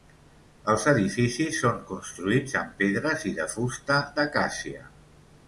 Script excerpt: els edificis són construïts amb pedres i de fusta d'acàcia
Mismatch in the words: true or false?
false